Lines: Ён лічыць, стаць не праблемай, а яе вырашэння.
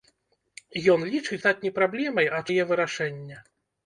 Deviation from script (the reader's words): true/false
false